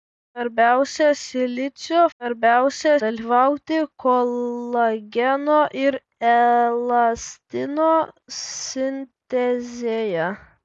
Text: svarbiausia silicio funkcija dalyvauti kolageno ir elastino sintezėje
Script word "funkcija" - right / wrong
wrong